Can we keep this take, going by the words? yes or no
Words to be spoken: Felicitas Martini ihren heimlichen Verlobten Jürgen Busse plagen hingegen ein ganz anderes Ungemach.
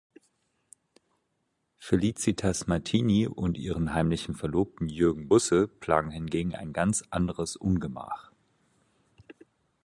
no